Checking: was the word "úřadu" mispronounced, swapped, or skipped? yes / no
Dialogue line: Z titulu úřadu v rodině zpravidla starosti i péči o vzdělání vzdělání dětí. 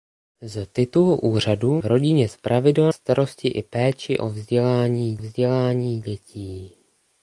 no